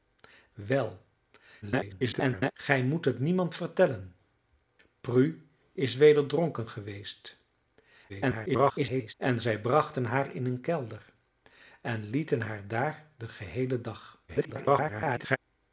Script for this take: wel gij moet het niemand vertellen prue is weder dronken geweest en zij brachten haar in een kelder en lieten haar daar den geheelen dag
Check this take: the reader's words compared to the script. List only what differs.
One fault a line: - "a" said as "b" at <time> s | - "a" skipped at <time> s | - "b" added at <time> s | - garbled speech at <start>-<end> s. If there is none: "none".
- garbled speech at 1.6-2.5 s
- garbled speech at 8.1-9.1 s
- garbled speech at 14.3-15.4 s